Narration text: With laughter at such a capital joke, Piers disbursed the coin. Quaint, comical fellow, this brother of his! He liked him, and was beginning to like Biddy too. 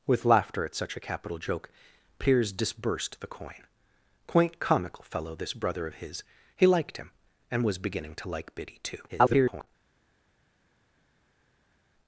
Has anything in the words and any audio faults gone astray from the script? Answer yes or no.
yes